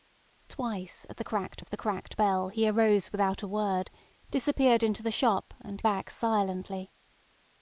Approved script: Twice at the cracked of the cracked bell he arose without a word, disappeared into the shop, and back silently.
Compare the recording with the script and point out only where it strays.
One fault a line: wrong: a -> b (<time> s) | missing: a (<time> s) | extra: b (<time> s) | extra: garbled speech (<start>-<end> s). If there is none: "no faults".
no faults